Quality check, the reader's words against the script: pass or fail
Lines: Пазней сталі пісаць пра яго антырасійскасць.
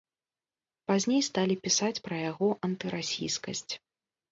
pass